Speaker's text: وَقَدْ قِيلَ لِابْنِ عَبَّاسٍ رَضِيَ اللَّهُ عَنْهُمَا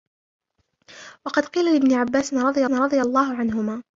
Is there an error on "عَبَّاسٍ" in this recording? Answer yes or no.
no